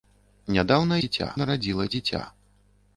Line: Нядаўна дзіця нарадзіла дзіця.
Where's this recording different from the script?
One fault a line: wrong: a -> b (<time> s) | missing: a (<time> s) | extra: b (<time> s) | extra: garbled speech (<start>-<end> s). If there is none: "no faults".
no faults